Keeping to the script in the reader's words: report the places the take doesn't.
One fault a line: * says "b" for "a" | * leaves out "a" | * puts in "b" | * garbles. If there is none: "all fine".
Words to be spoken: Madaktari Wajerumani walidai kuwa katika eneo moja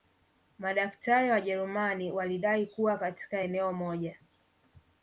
all fine